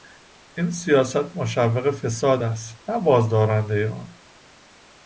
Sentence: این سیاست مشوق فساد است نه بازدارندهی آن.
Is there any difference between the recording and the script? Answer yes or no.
no